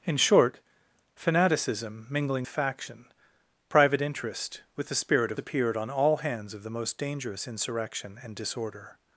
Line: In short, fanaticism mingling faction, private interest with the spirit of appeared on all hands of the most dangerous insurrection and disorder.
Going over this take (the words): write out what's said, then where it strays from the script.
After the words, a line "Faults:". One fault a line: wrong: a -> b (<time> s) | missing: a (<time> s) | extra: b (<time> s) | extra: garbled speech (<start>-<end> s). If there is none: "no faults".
In short, fanaticism mingling faction, private interest with the spirit of appeared on all hands of the most dangerous insurrection and disorder.
Faults:
no faults